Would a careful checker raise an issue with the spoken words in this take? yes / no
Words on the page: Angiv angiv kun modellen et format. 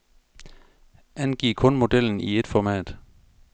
yes